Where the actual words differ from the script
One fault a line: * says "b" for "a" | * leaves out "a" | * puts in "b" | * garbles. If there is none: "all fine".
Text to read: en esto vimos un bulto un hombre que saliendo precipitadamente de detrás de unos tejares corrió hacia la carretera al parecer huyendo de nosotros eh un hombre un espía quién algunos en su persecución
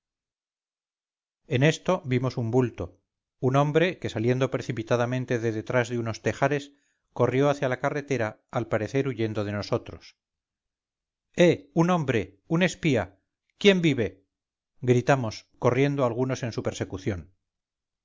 * puts in "vive gritamos corriendo"